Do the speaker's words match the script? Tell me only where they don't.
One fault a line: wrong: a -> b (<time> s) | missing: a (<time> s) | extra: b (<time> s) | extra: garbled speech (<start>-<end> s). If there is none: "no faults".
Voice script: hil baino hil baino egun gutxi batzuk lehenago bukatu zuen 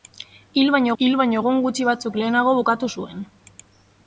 no faults